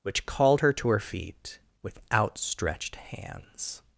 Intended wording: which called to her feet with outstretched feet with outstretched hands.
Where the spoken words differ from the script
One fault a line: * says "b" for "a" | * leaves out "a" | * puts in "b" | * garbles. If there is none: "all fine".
* puts in "her"
* leaves out "feet with outstretched"